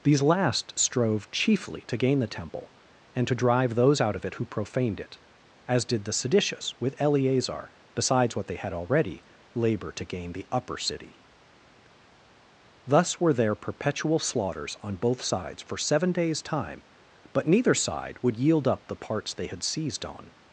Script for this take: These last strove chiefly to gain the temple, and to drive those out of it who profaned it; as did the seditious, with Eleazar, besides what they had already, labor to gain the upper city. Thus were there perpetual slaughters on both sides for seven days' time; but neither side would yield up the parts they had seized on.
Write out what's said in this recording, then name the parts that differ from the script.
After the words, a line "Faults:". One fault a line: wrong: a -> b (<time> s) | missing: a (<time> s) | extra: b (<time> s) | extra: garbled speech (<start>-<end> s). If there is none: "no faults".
These last strove chiefly to gain the temple, and to drive those out of it who profaned it; as did the seditious, with Eleazar, besides what they had already, labor to gain the upper city. Thus were there perpetual slaughters on both sides for seven days' time; but neither side would yield up the parts they had seized on.
Faults:
no faults